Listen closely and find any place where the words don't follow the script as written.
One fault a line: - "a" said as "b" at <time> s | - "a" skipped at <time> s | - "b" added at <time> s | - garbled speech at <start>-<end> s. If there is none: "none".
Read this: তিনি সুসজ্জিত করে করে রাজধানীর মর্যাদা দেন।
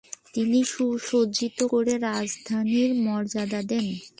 - "করে" skipped at 1.9 s